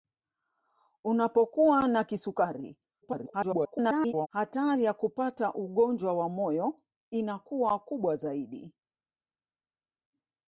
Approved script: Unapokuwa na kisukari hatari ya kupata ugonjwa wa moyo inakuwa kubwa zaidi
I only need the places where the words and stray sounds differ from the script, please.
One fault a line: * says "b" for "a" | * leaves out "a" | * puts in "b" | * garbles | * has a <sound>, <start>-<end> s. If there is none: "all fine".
* garbles